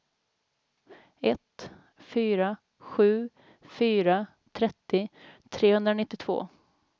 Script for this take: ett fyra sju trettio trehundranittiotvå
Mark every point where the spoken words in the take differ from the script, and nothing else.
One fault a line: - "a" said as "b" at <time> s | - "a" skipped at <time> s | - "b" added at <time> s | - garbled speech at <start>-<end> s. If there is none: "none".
- "fyra" added at 3.6 s